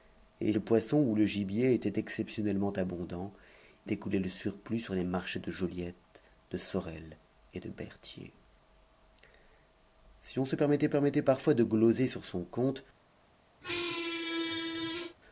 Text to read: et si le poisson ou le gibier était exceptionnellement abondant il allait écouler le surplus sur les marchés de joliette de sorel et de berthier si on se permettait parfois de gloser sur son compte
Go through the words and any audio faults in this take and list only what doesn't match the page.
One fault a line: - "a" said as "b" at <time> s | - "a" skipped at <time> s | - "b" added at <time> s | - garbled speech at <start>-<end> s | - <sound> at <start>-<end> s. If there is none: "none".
- "si" skipped at 0.5 s
- "il allait" skipped at 3.3 s
- "permettait" added at 10.9 s
- squeak at 13.6-15.2 s